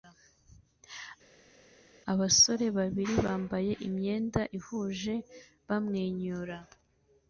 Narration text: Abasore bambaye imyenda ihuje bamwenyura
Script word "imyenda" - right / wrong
right